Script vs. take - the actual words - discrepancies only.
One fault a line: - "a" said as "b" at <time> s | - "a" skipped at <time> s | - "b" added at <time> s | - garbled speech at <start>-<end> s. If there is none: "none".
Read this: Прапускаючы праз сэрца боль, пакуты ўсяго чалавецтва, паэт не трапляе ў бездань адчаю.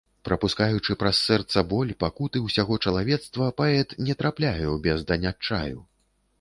none